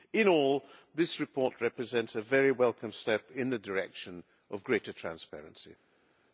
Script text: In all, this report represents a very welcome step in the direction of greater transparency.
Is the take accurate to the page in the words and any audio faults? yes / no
yes